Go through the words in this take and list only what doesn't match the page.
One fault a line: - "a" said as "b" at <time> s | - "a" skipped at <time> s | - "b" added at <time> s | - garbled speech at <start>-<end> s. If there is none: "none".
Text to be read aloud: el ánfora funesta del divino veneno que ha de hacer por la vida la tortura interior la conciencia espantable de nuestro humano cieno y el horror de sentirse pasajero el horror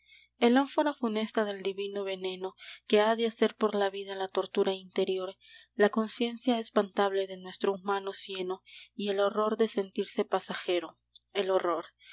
none